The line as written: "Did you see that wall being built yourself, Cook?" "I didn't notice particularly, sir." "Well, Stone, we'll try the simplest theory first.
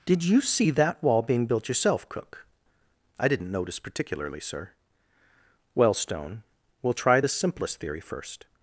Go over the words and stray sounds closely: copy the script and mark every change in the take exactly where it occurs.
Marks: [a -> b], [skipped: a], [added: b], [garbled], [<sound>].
"Did you see that wall being built yourself, Cook?" "I didn't notice particularly, sir." "Well, Stone, we'll try the simplest theory first.